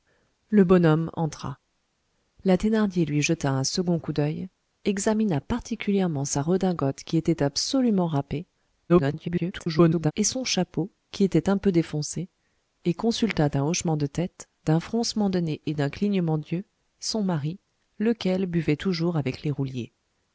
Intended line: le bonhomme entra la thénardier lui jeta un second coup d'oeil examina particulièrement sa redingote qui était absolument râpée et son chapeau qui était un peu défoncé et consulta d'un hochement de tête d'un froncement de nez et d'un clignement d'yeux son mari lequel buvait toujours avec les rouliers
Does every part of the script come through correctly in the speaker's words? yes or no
no